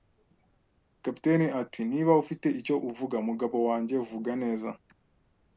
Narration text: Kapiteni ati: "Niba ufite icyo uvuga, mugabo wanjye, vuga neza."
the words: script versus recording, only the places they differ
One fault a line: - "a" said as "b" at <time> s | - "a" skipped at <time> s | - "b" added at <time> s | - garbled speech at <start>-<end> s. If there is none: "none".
none